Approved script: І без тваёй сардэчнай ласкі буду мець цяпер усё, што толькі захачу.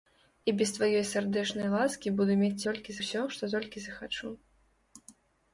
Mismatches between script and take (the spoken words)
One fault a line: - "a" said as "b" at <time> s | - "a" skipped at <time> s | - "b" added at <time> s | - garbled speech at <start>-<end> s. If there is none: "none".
- "цяпер" said as "толькі" at 2.7 s